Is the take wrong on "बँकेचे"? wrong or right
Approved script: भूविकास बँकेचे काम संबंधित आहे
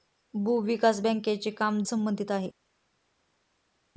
right